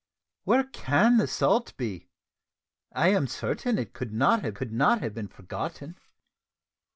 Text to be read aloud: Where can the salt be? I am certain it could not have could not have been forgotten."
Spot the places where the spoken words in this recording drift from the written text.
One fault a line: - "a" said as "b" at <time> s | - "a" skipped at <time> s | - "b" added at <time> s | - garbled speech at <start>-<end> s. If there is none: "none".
none